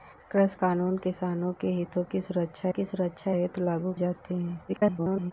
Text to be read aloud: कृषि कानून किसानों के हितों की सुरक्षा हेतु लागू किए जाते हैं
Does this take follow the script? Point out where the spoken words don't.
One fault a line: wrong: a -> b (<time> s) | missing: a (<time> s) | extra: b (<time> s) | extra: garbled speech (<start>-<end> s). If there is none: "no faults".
extra: की सुरक्षा (2.7 s)
missing: किए (3.9 s)
extra: garbled speech (4.7-5.3 s)